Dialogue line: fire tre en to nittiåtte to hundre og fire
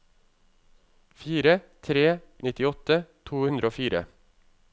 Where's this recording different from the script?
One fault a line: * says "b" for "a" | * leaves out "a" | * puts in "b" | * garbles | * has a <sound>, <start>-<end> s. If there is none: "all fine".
* leaves out "en to"